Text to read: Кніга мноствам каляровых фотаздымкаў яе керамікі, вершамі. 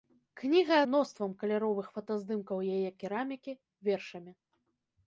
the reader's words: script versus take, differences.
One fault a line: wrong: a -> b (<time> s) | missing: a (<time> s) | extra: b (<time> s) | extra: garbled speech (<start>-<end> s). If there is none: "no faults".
no faults